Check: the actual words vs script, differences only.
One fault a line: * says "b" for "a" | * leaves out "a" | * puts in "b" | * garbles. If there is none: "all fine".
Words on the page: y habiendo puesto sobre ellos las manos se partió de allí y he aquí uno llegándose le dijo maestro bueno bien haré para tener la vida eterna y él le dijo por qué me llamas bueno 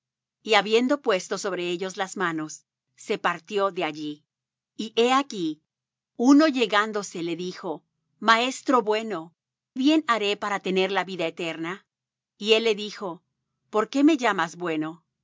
all fine